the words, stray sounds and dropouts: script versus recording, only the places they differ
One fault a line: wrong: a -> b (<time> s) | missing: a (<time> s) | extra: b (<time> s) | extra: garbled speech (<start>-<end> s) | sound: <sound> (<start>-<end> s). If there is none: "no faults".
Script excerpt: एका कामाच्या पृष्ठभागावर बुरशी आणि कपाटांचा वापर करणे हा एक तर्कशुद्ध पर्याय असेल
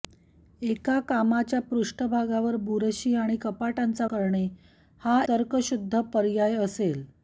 missing: वापर (4.1 s)
missing: एक (5.2 s)